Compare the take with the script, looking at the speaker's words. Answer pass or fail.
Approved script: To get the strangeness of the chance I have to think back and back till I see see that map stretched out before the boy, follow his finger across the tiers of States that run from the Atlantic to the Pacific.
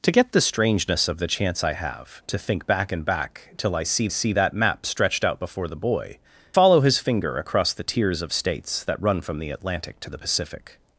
pass